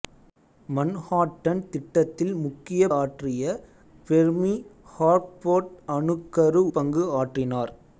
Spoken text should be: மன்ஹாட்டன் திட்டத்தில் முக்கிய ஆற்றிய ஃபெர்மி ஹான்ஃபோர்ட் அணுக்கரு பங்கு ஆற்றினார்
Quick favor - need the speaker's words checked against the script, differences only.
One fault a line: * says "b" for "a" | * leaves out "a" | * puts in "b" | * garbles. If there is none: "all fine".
all fine